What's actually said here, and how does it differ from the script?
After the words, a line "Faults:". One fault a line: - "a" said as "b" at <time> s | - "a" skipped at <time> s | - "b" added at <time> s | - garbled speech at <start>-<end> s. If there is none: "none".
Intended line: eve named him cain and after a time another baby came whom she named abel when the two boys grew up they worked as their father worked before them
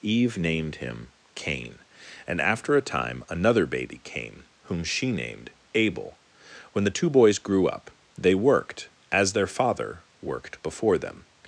eve named him cain and after a time another baby came whom she named abel when the two boys grew up they worked as their father worked before them
Faults:
none